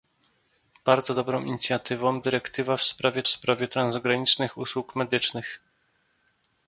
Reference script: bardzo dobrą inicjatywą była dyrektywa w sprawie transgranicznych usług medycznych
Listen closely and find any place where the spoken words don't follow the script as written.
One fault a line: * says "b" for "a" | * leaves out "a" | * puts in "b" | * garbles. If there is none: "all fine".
* leaves out "była"
* puts in "sprawie"